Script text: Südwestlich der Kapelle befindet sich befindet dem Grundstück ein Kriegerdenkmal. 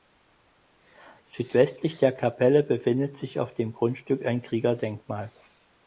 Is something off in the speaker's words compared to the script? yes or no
yes